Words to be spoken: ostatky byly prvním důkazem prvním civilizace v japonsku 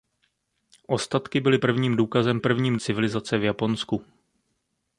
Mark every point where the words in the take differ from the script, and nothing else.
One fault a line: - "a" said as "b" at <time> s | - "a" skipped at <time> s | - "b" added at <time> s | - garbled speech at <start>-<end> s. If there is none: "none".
none